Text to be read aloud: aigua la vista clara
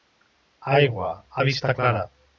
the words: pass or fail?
pass